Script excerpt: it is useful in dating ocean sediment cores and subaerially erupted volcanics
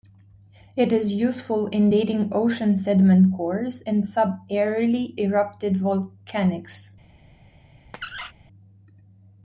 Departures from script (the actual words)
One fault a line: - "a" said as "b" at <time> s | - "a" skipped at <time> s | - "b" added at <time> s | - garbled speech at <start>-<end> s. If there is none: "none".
none